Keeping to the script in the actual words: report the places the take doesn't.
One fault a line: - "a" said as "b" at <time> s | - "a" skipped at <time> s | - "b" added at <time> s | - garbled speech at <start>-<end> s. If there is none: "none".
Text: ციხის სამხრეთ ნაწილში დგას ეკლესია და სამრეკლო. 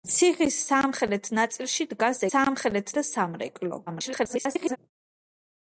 - "ეკლესია" said as "სამხრეთ" at 2.3 s
- garbled speech at 3.9-4.8 s